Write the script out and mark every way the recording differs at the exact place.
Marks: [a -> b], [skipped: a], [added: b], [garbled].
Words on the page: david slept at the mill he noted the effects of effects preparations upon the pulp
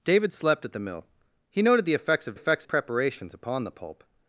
david slept at the mill he noted the effects of effects preparations upon the pulp